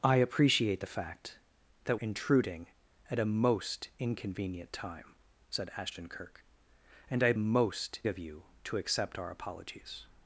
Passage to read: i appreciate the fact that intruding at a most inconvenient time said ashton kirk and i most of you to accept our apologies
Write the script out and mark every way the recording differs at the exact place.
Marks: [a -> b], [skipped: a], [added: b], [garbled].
i appreciate the fact that intruding at a most inconvenient time said ashton kirk and i most of you to accept our apologies